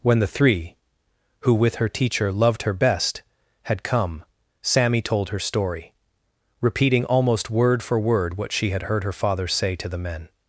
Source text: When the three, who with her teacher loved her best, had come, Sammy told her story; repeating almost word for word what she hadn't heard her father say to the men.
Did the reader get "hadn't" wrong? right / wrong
wrong